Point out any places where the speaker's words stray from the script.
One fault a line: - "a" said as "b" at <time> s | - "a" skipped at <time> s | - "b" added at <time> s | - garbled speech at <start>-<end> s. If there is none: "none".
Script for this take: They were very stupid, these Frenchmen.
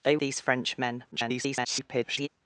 - "were very stupid" skipped at 0.2 s
- garbled speech at 1.1-2.3 s